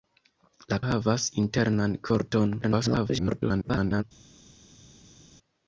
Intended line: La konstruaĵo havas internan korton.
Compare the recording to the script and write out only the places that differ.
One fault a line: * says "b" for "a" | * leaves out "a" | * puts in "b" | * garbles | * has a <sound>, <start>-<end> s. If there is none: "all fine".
* leaves out "konstruaĵo"
* garbles